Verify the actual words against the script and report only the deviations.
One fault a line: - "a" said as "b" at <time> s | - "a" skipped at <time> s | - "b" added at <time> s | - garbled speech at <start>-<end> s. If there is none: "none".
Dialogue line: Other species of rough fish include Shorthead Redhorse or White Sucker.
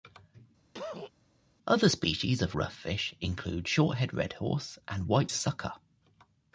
- "or" said as "and" at 4.9 s